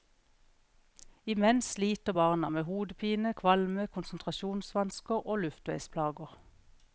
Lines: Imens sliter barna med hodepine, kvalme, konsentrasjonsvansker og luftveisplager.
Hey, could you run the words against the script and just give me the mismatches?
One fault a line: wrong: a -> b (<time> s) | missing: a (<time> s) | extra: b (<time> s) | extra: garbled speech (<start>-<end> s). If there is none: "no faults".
no faults